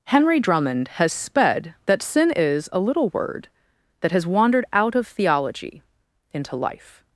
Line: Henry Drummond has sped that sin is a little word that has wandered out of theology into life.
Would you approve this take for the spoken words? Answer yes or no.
yes